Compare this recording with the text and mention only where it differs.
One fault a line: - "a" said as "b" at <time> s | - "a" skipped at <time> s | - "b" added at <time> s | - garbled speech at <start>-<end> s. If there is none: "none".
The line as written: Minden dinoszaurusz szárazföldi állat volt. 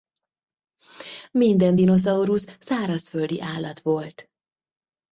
none